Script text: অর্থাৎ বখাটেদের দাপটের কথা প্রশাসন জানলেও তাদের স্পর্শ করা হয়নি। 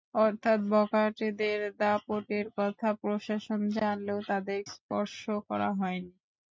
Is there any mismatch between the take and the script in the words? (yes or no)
no